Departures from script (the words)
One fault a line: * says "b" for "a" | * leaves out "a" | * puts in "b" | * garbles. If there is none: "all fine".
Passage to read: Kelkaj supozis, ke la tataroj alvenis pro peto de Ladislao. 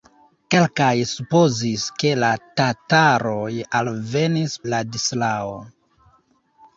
* leaves out "pro peto de"